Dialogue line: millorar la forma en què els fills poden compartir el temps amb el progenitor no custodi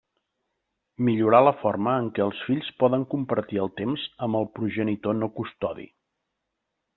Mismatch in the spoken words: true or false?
false